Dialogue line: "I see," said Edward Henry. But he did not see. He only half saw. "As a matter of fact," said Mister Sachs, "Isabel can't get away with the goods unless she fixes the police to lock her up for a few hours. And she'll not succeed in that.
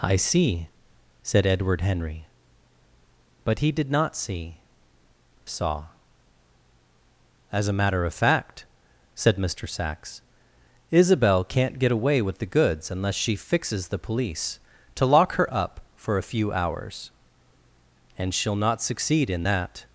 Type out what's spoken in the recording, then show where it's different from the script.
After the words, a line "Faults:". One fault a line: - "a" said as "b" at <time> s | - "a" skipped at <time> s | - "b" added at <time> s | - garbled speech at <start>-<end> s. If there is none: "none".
"I see," said Edward Henry. But he did not see. Saw. "As a matter of fact," said Mister Sachs, "Isabel can't get away with the goods unless she fixes the police to lock her up for a few hours. And she'll not succeed in that.
Faults:
- "He only half" skipped at 4.6 s